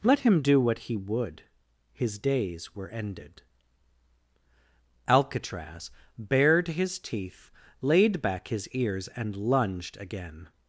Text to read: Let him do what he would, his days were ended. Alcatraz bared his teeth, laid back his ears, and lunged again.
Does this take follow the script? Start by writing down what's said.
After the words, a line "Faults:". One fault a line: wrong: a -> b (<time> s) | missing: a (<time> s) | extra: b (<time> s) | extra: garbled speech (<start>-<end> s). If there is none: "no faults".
Let him do what he would, his days were ended. Alcatraz bared his teeth, laid back his ears, and lunged again.
Faults:
no faults